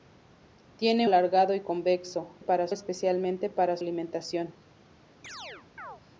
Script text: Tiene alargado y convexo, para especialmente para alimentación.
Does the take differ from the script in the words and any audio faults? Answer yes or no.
yes